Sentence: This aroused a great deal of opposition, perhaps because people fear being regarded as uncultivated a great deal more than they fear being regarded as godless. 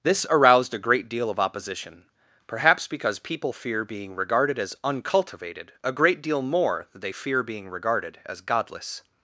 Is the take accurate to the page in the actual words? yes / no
yes